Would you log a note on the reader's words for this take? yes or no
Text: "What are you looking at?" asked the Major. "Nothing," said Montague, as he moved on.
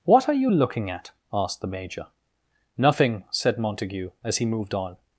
no